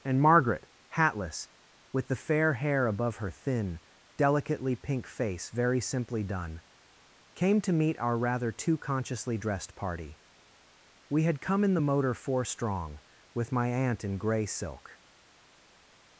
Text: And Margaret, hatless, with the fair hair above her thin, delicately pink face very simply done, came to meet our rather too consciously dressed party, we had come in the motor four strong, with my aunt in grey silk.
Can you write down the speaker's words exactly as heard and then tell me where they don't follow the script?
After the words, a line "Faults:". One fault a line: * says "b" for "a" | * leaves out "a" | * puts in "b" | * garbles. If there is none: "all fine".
And Margaret, hatless, with the fair hair above her thin, delicately pink face very simply done, came to meet our rather too consciously dressed party, we had come in the motor four strong, with my aunt in grey silk.
Faults:
all fine